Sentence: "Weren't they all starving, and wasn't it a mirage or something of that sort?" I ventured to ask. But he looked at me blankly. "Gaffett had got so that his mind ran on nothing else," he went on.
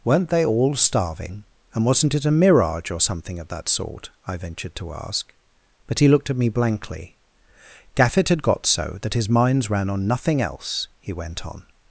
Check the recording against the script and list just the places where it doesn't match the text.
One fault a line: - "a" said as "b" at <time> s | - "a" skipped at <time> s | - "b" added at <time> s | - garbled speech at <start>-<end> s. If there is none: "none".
- "mind" said as "minds" at 9.3 s